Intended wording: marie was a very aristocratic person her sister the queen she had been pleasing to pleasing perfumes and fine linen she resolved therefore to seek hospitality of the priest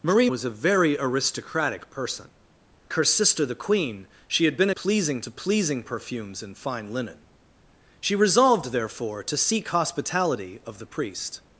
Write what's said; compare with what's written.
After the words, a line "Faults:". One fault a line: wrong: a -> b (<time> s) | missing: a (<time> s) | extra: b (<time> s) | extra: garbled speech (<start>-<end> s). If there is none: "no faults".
marie was a very aristocratic person her sister the queen she had been pleasing to pleasing perfumes and fine linen she resolved therefore to seek hospitality of the priest
Faults:
no faults